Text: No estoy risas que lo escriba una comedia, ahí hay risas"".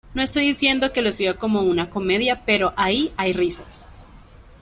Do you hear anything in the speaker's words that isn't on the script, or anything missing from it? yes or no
yes